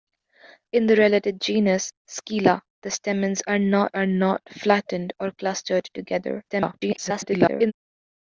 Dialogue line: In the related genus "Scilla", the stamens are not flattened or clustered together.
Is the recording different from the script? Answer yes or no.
yes